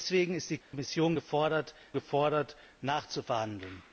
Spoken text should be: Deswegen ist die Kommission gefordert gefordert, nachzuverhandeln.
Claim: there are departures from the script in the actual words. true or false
false